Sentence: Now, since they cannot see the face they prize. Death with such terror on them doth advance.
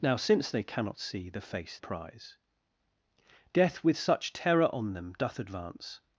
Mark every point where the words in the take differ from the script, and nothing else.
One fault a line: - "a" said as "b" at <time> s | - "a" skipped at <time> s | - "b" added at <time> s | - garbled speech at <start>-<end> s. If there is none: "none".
- "they" skipped at 1.8 s